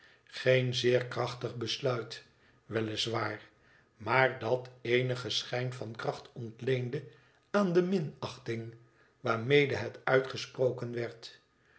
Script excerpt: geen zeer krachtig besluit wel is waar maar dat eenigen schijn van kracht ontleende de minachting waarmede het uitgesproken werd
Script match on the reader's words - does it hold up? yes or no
no